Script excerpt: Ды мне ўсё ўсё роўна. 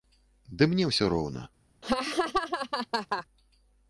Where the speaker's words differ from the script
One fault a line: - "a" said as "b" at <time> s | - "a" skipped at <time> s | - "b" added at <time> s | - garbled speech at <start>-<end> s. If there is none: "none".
- "ўсё" skipped at 1.1 s